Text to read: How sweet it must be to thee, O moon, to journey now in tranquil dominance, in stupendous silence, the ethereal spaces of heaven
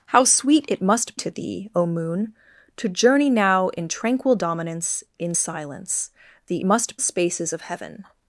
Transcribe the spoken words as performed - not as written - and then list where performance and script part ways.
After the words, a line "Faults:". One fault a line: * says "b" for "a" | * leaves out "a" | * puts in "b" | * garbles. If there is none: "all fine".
How sweet it must to thee, O moon, to journey now in tranquil dominance, in silence, the must spaces of heaven
Faults:
* leaves out "be"
* leaves out "stupendous"
* says "must" for "ethereal"